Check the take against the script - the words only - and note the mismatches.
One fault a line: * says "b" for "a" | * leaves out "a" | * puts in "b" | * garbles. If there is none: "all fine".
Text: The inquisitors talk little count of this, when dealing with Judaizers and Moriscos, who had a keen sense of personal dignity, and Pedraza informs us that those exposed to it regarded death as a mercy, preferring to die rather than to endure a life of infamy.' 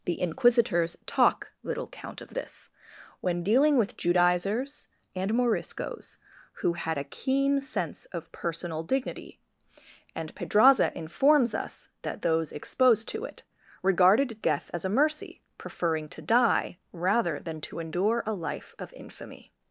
all fine